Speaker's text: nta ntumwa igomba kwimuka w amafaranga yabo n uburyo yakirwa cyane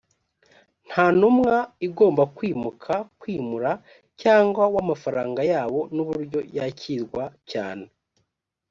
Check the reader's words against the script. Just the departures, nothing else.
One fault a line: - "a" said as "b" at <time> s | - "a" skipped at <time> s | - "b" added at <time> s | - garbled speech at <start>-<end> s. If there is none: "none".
- "kwimura cyangwa" added at 3.2 s